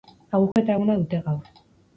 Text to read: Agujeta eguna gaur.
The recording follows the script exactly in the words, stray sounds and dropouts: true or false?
false